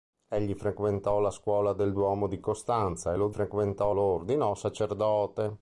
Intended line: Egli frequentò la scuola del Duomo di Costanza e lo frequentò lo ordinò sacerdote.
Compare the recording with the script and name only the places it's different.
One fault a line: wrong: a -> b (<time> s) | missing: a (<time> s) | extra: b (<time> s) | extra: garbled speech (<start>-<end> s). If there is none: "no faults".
no faults